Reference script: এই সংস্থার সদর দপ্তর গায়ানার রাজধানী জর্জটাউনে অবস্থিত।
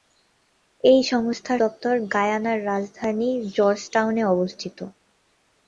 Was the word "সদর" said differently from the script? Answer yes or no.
yes